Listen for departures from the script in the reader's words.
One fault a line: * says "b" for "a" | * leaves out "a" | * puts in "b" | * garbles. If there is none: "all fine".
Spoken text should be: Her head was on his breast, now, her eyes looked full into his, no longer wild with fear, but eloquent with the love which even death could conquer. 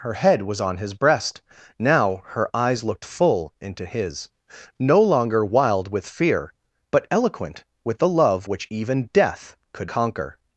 all fine